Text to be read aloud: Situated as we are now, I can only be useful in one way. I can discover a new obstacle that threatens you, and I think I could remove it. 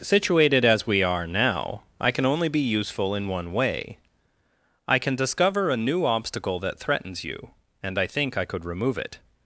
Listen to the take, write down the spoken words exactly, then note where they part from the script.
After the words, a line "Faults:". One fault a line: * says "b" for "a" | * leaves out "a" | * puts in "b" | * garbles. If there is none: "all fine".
Situated as we are now, I can only be useful in one way. I can discover a new obstacle that threatens you, and I think I could remove it.
Faults:
all fine